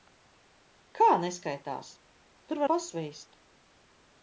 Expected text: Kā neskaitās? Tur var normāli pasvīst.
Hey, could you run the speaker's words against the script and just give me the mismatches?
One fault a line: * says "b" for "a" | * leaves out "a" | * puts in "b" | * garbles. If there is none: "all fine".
* leaves out "var normāli"